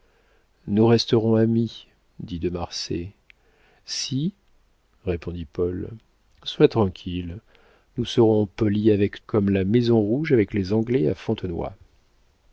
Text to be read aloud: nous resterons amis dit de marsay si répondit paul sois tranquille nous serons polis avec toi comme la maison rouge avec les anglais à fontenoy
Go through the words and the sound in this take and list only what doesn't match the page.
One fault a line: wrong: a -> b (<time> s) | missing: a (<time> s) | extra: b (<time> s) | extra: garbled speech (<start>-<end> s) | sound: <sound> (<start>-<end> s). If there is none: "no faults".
missing: toi (9.2 s)